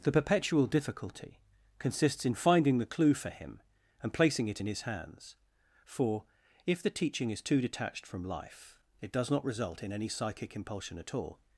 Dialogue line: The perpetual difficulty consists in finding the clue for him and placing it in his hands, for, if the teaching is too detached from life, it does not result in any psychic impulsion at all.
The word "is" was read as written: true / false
true